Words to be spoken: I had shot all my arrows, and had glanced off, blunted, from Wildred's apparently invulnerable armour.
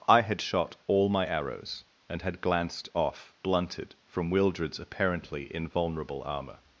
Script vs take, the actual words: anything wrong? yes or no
no